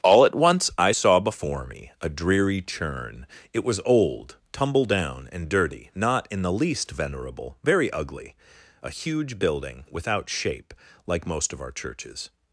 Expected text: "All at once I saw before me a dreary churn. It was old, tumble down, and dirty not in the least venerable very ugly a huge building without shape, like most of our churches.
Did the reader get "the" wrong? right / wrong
right